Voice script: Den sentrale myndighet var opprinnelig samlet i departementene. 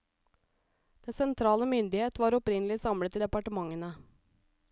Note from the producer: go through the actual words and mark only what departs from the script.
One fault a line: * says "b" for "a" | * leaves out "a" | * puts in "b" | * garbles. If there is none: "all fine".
all fine